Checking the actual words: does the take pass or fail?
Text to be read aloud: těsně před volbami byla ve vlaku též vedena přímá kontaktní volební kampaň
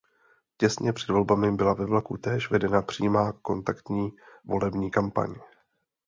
pass